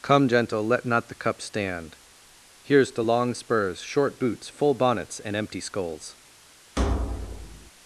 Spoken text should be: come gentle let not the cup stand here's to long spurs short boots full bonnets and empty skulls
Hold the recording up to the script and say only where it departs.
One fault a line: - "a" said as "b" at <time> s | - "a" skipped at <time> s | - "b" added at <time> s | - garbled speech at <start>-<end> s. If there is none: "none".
none